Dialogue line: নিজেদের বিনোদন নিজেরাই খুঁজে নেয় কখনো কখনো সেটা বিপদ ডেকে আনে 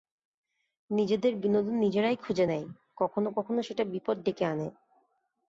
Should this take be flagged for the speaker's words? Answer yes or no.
no